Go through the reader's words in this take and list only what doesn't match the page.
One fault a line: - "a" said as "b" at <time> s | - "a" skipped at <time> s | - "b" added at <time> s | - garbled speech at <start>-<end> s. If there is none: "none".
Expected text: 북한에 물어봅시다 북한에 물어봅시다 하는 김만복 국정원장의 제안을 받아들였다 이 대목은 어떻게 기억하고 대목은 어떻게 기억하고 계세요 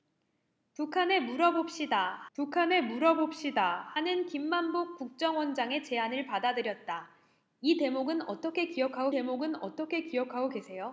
none